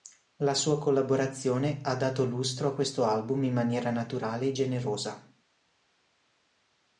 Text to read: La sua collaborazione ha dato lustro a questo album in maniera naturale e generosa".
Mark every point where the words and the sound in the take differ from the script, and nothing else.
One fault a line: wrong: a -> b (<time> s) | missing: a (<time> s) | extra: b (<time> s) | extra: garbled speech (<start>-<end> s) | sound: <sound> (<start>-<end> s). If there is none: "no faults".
no faults